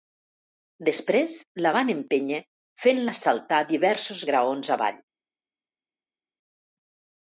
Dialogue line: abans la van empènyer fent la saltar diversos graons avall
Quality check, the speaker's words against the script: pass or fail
fail